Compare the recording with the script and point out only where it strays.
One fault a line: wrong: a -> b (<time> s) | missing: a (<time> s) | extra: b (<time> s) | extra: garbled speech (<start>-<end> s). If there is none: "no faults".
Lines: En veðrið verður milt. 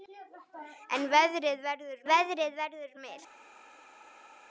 extra: veðrið verður (2.1 s)